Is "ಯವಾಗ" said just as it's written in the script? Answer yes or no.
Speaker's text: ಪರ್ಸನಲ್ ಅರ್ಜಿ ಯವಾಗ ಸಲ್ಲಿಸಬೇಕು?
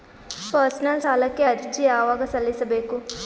yes